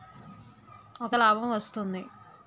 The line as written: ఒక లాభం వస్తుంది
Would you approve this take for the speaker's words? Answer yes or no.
yes